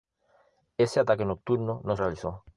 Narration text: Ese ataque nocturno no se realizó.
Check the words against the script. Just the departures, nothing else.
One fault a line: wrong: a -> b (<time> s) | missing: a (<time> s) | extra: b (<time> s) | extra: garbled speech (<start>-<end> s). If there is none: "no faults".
missing: se (1.9 s)